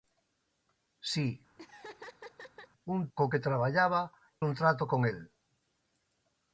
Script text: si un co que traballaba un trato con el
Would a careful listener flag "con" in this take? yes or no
no